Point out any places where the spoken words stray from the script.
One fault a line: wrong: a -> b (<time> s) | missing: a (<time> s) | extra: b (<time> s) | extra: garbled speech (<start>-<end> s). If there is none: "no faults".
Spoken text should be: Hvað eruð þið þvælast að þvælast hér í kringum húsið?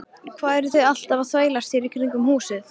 wrong: þvælast -> alltaf (0.9 s)